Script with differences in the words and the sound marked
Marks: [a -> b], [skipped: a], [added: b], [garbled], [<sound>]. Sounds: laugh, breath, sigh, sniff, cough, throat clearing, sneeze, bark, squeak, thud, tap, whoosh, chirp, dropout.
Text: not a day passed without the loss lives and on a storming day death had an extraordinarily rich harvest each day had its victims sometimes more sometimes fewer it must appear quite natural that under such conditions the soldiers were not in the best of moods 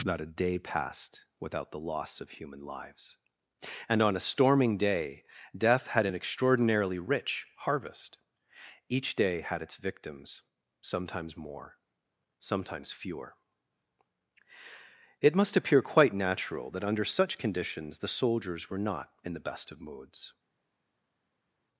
not a day passed without the loss [added: of human] lives and on a storming day death had an extraordinarily rich harvest each day had its victims sometimes more sometimes fewer it must appear quite natural that under such conditions the soldiers were not in the best of moods